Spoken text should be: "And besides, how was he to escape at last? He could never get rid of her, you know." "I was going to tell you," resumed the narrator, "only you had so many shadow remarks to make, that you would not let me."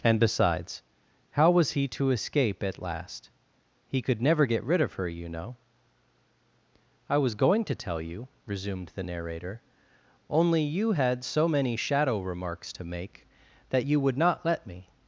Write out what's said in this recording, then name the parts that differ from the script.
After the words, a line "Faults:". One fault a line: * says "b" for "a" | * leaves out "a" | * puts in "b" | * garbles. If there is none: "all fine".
"And besides, how was he to escape at last? He could never get rid of her, you know." "I was going to tell you," resumed the narrator, "only you had so many shadow remarks to make, that you would not let me."
Faults:
all fine